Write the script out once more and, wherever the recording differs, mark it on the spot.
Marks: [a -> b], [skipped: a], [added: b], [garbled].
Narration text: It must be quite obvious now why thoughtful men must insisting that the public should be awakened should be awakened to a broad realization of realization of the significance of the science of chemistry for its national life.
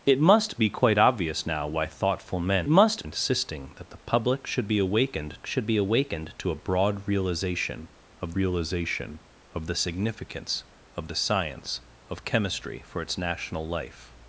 It must be quite obvious now why thoughtful men must insisting that the public should be awakened should be awakened to a broad realization of realization of the significance of the science of chemistry for its national life.